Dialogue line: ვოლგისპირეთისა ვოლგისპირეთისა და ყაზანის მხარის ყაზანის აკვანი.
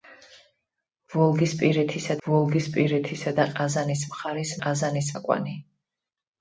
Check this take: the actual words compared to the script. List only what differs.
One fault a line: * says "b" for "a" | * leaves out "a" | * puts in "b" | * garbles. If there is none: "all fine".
all fine